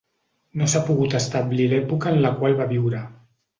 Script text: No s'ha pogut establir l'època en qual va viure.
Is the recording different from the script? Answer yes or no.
yes